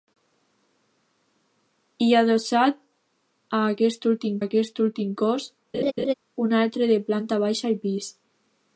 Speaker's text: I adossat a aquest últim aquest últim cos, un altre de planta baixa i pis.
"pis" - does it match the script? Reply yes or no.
yes